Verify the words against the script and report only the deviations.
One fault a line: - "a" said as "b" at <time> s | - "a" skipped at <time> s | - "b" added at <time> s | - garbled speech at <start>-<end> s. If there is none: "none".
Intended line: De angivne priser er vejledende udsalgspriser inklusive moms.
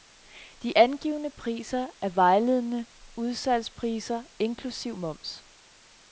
none